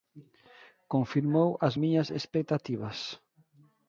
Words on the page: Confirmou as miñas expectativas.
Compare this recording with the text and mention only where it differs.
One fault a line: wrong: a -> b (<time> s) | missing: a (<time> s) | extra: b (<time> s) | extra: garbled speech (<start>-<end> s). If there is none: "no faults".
no faults